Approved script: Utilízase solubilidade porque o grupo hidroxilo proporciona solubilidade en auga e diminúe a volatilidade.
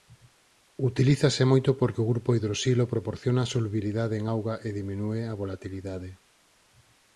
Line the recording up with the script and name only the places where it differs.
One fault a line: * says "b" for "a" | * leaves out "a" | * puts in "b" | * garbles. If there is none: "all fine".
* says "moito" for "solubilidade"